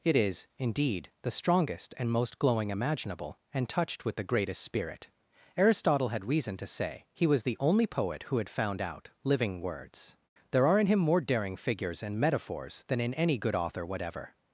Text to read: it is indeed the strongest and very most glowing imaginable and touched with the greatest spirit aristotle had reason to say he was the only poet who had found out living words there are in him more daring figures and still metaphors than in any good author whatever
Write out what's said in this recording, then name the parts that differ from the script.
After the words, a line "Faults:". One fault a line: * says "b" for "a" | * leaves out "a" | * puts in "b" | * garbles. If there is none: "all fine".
it is indeed the strongest and most glowing imaginable and touched with the greatest spirit aristotle had reason to say he was the only poet who had found out living words there are in him more daring figures and metaphors than in any good author whatever
Faults:
* leaves out "very"
* leaves out "still"